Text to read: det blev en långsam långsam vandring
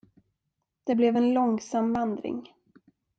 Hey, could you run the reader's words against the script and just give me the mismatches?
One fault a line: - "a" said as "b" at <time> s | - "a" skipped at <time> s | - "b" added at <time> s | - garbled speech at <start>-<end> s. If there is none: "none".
- "långsam" skipped at 1.9 s